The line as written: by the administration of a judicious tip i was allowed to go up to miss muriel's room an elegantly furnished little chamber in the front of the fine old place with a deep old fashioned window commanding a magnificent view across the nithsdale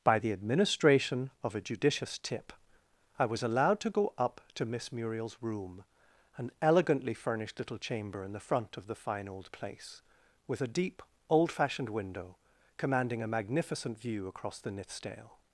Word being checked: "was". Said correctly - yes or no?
yes